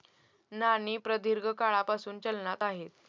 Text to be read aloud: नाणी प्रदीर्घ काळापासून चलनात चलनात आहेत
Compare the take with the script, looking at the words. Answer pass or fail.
fail